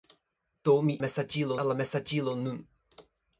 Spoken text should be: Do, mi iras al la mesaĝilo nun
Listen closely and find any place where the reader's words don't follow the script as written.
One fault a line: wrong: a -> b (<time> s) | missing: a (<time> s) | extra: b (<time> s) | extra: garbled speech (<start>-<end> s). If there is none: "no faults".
wrong: iras -> mesaĝilo (1.0 s)